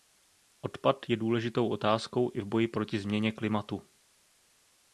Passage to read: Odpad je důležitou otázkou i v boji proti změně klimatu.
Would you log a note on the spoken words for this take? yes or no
no